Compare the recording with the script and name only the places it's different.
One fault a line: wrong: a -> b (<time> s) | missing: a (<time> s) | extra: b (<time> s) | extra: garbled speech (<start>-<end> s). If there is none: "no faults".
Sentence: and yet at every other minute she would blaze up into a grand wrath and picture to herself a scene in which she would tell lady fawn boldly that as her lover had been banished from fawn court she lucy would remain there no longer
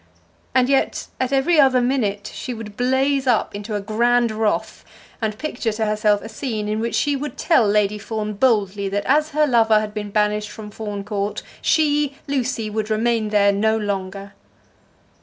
no faults